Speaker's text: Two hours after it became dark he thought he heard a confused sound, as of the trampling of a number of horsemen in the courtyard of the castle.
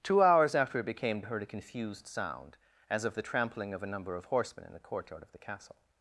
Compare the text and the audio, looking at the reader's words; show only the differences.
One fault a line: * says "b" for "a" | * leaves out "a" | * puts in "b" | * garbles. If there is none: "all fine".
* leaves out "dark he thought"